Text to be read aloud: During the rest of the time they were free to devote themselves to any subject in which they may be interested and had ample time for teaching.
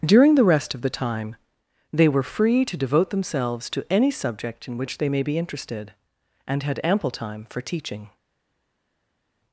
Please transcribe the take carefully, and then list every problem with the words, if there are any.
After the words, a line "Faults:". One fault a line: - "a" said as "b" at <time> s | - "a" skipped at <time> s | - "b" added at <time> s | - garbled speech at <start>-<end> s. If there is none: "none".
During the rest of the time they were free to devote themselves to any subject in which they may be interested and had ample time for teaching.
Faults:
none